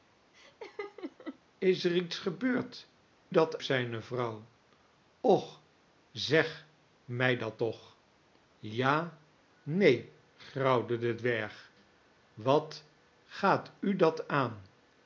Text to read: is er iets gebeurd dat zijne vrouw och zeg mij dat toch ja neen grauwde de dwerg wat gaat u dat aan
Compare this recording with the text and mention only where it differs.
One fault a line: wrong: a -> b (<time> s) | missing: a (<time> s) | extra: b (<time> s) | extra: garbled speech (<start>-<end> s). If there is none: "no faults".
no faults